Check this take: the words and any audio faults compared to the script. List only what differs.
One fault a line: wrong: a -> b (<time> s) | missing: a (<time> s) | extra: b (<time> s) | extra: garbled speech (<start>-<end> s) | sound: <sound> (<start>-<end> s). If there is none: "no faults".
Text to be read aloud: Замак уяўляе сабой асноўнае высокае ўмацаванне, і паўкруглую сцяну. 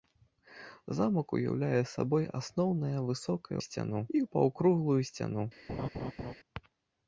wrong: ўмацаванне -> сцяну (3.7 s)
sound: laugh (5.7-6.3 s)